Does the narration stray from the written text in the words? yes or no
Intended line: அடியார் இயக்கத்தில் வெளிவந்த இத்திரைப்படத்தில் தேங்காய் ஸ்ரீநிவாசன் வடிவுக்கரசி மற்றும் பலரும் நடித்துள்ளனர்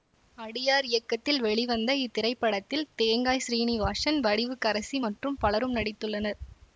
no